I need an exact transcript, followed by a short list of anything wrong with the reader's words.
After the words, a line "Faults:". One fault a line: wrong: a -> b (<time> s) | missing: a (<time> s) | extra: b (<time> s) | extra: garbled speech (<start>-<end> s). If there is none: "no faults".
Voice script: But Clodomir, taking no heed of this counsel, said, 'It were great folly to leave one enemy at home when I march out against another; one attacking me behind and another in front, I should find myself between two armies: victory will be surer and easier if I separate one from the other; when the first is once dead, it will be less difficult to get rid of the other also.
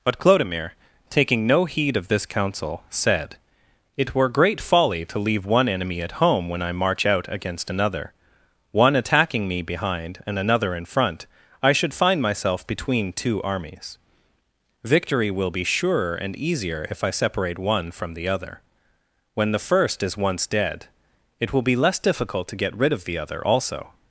But Clodomir, taking no heed of this counsel, said, 'It were great folly to leave one enemy at home when I march out against another; one attacking me behind and another in front, I should find myself between two armies: victory will be surer and easier if I separate one from the other; when the first is once dead, it will be less difficult to get rid of the other also.
Faults:
no faults